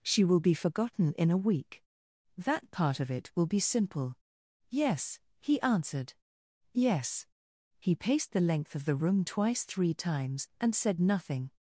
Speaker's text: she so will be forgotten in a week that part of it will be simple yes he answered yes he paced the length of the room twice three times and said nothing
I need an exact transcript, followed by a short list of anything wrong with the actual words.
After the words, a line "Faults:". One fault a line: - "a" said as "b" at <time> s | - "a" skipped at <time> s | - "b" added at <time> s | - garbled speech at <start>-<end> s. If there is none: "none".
she will be forgotten in a week that part of it will be simple yes he answered yes he paced the length of the room twice three times and said nothing
Faults:
- "so" skipped at 0.2 s